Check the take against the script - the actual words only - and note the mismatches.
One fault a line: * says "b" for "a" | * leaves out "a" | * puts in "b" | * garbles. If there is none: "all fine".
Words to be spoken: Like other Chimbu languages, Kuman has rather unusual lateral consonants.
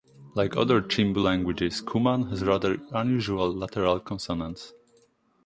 all fine